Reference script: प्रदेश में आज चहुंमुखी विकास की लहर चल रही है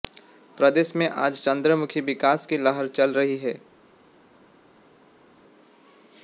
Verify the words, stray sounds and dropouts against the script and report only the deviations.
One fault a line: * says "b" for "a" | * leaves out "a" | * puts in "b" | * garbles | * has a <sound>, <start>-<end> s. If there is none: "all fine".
all fine